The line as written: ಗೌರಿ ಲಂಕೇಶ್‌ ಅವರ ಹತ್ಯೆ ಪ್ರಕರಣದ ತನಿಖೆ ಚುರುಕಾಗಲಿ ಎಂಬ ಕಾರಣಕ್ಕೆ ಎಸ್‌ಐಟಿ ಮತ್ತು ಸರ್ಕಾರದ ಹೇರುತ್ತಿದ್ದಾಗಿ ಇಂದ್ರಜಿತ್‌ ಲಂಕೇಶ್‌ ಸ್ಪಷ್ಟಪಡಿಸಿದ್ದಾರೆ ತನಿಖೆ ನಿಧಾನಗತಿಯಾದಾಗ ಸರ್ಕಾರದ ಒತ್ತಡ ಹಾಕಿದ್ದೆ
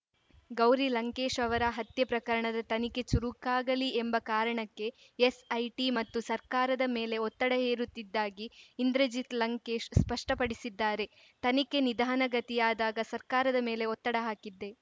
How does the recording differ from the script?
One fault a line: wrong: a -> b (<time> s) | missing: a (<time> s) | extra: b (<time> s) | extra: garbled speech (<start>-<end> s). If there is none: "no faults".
extra: ಮೇಲೆ ಒತ್ತಡ (6.9 s)
extra: ಮೇಲೆ (13.7 s)